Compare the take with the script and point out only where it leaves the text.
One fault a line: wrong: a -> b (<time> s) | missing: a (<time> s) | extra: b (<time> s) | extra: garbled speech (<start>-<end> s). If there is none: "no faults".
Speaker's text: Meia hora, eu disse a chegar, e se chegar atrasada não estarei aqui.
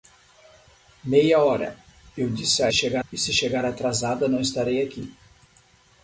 no faults